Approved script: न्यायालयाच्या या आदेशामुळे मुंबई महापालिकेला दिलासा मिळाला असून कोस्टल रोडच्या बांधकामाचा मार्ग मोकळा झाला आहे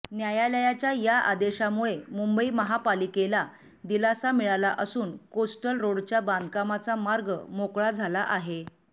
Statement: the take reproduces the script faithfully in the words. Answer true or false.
true